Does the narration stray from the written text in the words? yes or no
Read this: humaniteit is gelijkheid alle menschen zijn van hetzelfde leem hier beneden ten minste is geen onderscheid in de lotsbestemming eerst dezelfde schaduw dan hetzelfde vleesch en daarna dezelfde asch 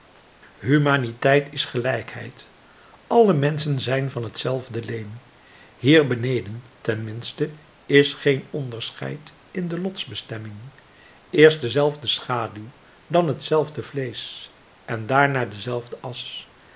no